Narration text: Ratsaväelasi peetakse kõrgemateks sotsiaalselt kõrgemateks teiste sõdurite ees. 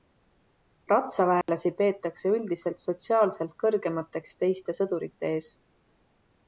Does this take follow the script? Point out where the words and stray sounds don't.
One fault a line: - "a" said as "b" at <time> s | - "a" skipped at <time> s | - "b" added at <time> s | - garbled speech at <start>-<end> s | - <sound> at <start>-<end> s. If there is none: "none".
- dropout at 1.4-1.5 s
- "kõrgemateks" said as "üldiselt" at 2.4 s